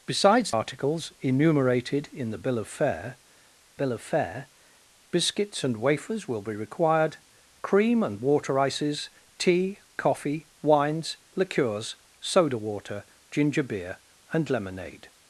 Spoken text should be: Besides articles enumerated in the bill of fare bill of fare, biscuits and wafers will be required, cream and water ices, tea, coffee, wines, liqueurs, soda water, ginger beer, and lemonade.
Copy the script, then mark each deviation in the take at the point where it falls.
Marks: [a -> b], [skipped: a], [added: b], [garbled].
Besides articles enumerated in the bill of fare bill of fare, biscuits and wafers will be required, cream and water ices, tea, coffee, wines, liqueurs, soda water, ginger beer, and lemonade.